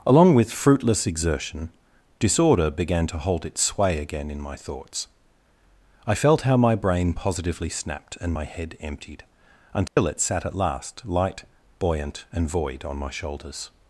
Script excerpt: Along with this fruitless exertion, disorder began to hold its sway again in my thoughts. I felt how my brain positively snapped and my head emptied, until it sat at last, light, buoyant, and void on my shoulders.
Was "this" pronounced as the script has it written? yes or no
no